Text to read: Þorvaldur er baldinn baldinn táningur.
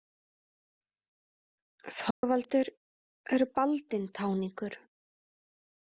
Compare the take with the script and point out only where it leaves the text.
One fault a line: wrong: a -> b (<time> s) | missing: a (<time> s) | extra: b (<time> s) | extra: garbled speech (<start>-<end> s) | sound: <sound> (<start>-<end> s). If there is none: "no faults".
sound: dropout (2.1-2.2 s)
missing: baldinn (4.1 s)